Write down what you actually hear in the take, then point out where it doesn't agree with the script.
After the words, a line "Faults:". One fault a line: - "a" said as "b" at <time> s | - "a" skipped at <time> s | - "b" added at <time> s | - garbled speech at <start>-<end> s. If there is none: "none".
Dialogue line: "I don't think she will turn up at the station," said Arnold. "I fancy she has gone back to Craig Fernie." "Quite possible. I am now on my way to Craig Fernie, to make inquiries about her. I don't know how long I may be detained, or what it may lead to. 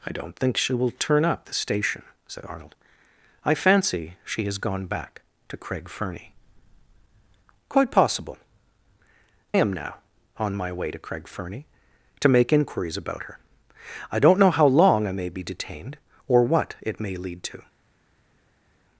"I don't think she will turn up the station," said Arnold. "I fancy she has gone back to Craig Fernie." "Quite possible. am now on my way to Craig Fernie, to make inquiries about her. I don't know how long I may be detained, or what it may lead to.
Faults:
- "at" skipped at 1.5 s
- "I" skipped at 8.4 s